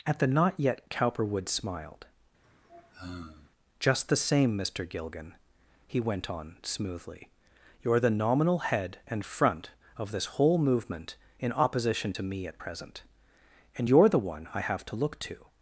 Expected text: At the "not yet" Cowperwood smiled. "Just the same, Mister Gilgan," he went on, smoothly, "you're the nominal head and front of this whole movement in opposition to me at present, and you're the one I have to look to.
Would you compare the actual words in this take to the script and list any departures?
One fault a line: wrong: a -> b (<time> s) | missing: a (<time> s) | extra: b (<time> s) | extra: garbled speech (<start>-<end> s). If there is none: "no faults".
no faults